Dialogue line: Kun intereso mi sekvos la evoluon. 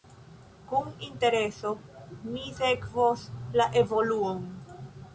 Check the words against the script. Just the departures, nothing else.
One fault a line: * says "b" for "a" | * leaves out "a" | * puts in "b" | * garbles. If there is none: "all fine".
all fine